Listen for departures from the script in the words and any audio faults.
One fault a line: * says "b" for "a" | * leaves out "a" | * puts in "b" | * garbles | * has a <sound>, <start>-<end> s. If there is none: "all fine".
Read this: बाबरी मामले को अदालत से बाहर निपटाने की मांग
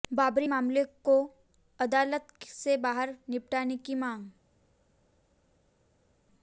all fine